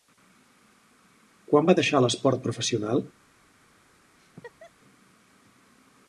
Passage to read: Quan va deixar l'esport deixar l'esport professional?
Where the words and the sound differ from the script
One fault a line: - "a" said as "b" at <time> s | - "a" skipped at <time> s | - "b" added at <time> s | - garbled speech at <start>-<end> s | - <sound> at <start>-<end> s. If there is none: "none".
- "deixar l'esport" skipped at 2.4 s
- laugh at 4.2-4.7 s